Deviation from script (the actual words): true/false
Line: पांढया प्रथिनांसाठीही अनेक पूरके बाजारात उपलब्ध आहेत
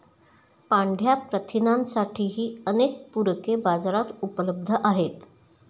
false